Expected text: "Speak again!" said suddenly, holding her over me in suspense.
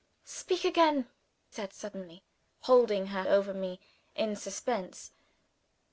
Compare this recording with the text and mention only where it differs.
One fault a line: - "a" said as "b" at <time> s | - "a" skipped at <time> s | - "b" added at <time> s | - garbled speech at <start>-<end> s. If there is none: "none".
none